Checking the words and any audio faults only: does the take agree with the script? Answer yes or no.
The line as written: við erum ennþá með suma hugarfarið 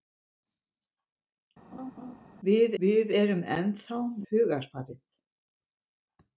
no